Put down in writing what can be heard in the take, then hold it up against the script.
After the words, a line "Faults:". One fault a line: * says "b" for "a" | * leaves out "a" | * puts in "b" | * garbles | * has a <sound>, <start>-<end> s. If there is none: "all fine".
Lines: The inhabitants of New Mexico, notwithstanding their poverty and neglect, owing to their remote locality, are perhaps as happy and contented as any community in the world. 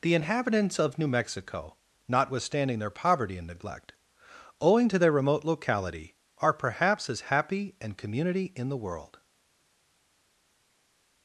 The inhabitants of New Mexico, notwithstanding their poverty and neglect, owing to their remote locality, are perhaps as happy and community in the world.
Faults:
* leaves out "contented as any"